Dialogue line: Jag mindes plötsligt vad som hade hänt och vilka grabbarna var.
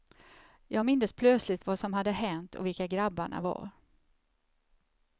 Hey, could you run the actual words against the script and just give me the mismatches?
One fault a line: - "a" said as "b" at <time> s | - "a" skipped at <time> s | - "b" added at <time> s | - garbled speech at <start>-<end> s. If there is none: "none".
none